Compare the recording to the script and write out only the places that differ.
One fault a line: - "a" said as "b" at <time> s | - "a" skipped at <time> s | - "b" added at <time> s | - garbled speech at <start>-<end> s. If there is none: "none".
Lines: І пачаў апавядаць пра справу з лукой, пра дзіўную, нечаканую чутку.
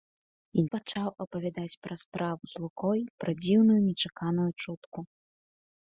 none